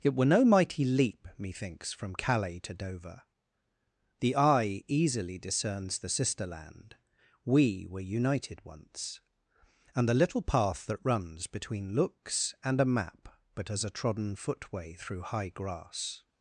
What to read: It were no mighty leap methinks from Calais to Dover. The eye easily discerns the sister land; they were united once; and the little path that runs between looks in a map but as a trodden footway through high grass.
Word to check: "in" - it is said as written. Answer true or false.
false